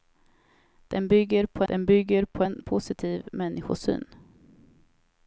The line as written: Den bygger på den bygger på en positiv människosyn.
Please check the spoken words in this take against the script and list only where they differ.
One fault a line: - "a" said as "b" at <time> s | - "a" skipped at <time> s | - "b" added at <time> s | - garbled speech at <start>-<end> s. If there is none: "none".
none